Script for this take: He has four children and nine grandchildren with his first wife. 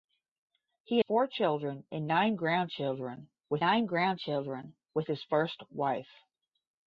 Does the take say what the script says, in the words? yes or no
no